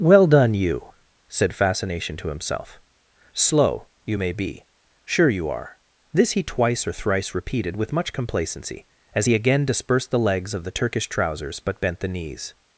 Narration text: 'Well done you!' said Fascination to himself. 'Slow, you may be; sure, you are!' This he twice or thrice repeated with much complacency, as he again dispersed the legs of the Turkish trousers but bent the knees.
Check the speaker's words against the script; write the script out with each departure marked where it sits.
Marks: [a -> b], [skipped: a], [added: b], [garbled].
'Well done you!' said Fascination to himself. 'Slow, you may be; sure, you are!' This he twice or thrice repeated with much complacency, as he again dispersed the legs of the Turkish trousers but bent the knees.